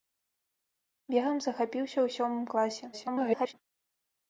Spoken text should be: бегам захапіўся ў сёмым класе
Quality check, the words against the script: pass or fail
fail